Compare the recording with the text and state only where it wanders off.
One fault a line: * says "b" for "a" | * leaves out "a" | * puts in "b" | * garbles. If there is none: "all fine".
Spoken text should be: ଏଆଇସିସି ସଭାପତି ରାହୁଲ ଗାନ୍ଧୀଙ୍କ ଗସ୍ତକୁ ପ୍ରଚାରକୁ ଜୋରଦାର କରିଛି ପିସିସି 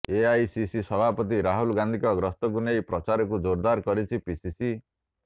* puts in "ନେଇ"